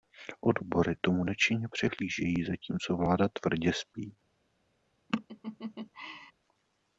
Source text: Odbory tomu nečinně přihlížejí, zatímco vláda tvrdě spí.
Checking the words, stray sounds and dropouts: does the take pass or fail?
fail